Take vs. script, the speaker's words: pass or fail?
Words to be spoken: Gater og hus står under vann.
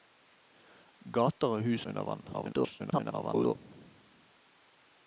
fail